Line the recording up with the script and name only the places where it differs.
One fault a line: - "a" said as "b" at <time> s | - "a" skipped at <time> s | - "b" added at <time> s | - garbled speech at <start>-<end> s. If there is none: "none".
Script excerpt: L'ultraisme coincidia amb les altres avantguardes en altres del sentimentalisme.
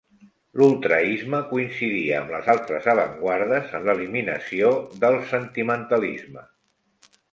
- "altres" said as "l'eliminació" at 3.9 s